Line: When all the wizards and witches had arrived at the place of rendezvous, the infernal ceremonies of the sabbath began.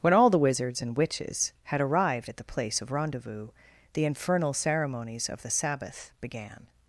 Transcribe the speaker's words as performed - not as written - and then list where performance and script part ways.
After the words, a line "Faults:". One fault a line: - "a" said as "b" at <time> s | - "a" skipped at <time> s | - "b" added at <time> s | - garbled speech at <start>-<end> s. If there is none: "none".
When all the wizards and witches had arrived at the place of rendezvous, the infernal ceremonies of the sabbath began.
Faults:
none